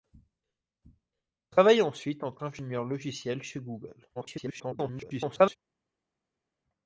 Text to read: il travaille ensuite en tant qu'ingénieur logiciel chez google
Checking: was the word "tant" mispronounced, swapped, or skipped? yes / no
yes